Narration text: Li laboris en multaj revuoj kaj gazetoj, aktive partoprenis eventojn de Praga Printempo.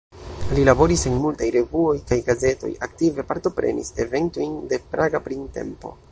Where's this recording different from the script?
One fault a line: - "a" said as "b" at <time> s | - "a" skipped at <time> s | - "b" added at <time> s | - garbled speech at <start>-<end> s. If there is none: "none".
none